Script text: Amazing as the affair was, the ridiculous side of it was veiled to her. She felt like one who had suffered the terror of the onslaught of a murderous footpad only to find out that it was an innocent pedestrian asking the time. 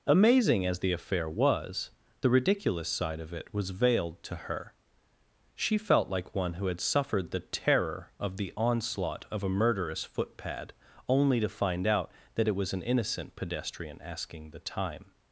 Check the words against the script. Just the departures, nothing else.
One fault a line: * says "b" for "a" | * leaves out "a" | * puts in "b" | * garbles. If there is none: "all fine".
all fine